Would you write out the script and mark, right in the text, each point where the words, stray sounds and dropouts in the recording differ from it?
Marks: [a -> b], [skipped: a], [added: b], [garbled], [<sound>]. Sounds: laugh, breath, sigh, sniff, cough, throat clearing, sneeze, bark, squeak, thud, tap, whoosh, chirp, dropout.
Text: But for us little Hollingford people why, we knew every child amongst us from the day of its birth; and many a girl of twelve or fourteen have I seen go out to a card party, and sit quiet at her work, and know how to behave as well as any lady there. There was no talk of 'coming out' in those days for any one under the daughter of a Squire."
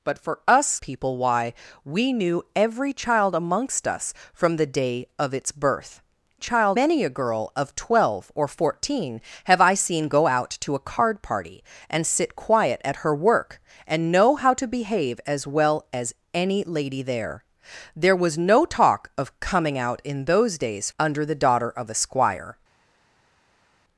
But for us [skipped: little Hollingford] people why, we knew every child amongst us from the day of its birth; [and -> child] many a girl of twelve or fourteen have I seen go out to a card party, and sit quiet at her work, and know how to behave as well as any lady there. There was no talk of 'coming out' in those days [skipped: for any one] under the daughter of a Squire."